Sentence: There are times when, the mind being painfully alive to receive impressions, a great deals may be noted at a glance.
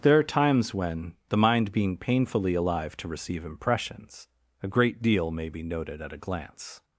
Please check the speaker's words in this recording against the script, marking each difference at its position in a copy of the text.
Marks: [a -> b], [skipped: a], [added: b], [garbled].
There are times when, the mind being painfully alive to receive impressions, a great [deals -> deal] may be noted at a glance.